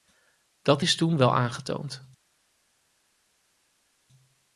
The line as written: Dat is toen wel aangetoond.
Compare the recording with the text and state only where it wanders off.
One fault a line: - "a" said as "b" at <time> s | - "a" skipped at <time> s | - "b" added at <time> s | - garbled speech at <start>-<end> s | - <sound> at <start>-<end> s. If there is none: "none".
none